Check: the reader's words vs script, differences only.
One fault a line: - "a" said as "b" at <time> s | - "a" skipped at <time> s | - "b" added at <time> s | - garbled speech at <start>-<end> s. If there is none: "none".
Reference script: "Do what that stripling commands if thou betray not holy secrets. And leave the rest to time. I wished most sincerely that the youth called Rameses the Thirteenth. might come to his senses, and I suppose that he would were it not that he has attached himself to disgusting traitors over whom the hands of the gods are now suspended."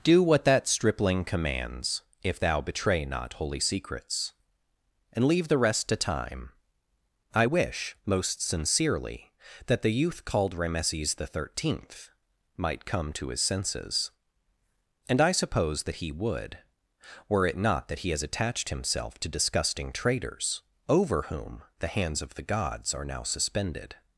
- "wished" said as "wish" at 7.4 s